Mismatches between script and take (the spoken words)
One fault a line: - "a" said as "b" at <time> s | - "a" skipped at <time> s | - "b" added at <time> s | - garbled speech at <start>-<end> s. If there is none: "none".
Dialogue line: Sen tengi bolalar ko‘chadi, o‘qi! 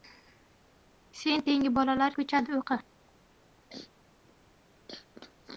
none